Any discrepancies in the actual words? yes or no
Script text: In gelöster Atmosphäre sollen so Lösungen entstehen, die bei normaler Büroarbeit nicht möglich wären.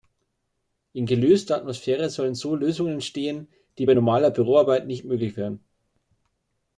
no